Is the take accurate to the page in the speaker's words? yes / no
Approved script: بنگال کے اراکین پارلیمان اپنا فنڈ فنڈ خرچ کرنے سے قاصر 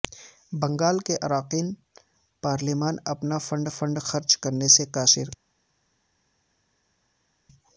yes